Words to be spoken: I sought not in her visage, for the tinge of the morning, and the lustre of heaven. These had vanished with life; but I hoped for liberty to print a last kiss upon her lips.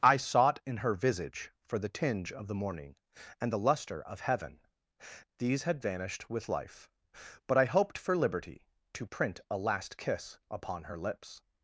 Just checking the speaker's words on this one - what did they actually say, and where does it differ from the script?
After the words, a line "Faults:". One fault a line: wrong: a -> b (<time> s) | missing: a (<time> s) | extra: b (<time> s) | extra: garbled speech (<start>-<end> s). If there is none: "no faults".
I sought in her visage, for the tinge of the morning, and the lustre of heaven. These had vanished with life; but I hoped for liberty to print a last kiss upon her lips.
Faults:
missing: not (0.6 s)